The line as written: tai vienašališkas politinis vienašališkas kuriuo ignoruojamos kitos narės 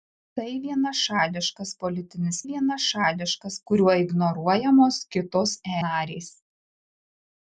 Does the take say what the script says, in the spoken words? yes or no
yes